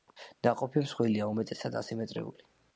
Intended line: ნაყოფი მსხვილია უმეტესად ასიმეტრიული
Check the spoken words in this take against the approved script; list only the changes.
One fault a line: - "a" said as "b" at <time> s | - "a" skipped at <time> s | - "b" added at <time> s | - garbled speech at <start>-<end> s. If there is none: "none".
none